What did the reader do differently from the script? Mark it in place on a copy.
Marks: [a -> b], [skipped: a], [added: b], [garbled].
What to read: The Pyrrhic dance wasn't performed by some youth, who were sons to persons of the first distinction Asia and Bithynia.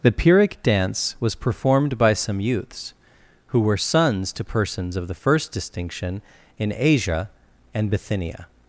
The Pyrrhic dance [wasn't -> was] performed by some [youth, -> youths] who were sons to persons of the first distinction [added: in] Asia and Bithynia.